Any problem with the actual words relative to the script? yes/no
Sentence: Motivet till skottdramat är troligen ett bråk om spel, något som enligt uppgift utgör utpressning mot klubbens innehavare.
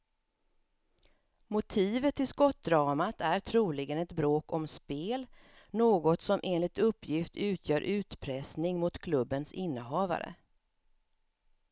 no